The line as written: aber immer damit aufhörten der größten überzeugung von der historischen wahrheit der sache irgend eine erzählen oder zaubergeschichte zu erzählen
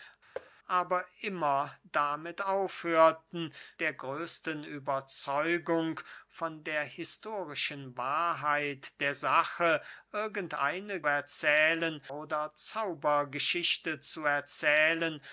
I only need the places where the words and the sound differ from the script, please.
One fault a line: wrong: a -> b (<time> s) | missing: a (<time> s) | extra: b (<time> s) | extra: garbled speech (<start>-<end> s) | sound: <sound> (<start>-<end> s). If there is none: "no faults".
sound: thud (0.3-0.5 s)